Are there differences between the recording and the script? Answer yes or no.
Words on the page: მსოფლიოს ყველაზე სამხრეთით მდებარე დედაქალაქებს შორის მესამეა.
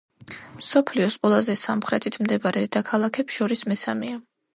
no